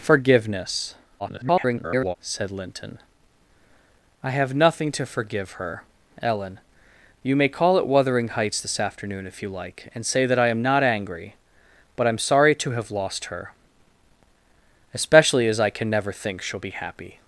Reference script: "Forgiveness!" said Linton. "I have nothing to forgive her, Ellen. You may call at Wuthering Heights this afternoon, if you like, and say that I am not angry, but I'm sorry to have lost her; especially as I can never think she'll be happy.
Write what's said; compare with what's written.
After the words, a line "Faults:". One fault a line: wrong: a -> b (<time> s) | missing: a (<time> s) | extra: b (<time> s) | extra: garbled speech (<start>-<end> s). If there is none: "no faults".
"Forgiveness!" [garbled] said Linton. "I have nothing to forgive her, Ellen. You may call at Wuthering Heights this afternoon, if you like, and say that I am not angry, but I'm sorry to have lost her; especially as I can never think she'll be happy.
Faults:
extra: garbled speech (1.2-2.2 s)